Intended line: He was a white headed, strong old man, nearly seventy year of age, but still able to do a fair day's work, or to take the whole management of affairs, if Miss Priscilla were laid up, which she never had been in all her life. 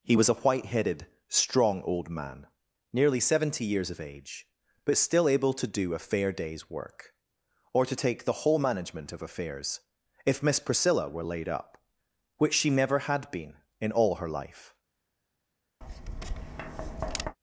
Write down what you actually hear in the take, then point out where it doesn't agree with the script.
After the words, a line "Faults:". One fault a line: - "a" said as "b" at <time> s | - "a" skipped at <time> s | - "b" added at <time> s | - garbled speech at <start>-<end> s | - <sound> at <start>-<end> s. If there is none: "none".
He was a white headed, strong old man, nearly seventy years of age, but still able to do a fair day's work, or to take the whole management of affairs, if Miss Priscilla were laid up, which she never had been in all her life.
Faults:
- "year" said as "years" at 3.6 s
- tap at 15.8-17.4 s